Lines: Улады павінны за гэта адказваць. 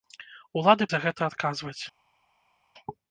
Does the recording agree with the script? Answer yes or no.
no